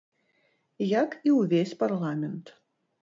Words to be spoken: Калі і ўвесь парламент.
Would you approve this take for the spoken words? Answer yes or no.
no